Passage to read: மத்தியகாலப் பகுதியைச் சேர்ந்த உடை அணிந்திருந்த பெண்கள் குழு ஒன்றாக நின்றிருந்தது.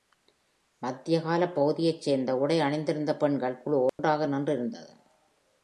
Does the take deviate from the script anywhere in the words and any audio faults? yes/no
yes